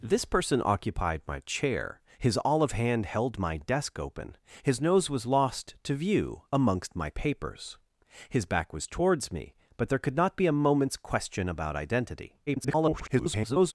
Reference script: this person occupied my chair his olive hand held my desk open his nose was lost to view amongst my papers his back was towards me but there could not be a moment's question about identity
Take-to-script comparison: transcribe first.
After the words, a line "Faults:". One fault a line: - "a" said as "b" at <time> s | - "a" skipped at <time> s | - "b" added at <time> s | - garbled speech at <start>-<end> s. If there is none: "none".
this person occupied my chair his olive hand held my desk open his nose was lost to view amongst my papers his back was towards me but there could not be a moment's question about identity [garbled]
Faults:
- garbled speech at 12.5-13.7 s